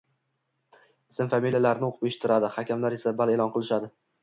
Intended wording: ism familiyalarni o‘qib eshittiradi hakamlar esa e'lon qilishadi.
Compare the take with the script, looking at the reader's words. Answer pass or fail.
fail